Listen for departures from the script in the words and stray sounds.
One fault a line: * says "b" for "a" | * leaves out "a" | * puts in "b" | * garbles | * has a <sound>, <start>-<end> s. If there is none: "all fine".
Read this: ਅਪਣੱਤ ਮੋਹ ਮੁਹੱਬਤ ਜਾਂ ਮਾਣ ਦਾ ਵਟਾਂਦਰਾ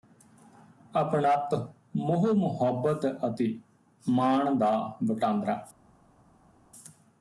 * says "ਅਤੇ" for "ਜਾਂ"